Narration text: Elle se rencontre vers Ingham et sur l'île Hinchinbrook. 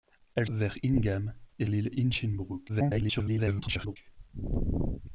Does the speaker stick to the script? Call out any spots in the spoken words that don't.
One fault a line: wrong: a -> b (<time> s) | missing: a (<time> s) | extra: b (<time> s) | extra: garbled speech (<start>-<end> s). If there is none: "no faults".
missing: se rencontre (0.5 s)
missing: sur (1.7 s)
extra: garbled speech (2.7-4.0 s)